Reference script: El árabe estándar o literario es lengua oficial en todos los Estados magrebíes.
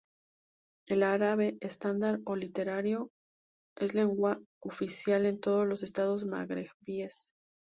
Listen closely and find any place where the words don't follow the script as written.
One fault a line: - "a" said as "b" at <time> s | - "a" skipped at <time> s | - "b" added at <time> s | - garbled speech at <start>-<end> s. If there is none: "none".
none